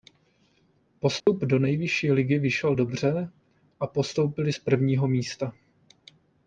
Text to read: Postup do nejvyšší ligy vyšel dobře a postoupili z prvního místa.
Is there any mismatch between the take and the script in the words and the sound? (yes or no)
yes